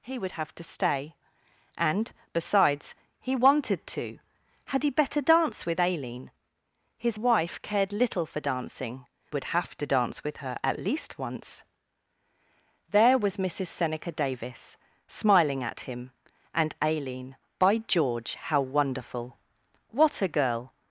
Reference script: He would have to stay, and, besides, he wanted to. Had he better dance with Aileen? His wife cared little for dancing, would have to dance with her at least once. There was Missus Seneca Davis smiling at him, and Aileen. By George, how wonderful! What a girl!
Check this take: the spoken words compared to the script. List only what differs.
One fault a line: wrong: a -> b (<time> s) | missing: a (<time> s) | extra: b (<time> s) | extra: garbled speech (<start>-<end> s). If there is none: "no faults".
no faults